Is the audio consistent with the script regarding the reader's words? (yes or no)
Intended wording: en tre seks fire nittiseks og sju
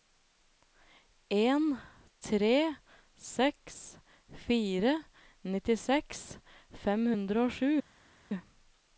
no